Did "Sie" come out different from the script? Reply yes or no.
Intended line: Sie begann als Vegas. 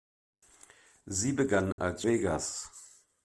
no